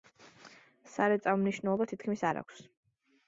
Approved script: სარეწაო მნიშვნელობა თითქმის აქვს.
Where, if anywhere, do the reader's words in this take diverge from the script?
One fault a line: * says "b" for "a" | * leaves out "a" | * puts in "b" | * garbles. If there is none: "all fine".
* puts in "არ"